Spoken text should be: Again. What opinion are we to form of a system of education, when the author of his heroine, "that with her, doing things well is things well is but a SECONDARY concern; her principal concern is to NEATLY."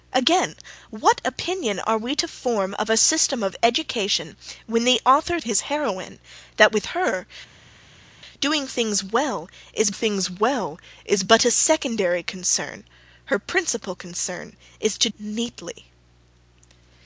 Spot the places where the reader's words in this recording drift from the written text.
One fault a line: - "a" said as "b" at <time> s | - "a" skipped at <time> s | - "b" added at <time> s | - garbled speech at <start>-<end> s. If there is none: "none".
none